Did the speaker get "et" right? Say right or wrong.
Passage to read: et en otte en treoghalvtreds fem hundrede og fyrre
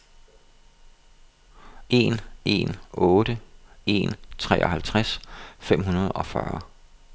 wrong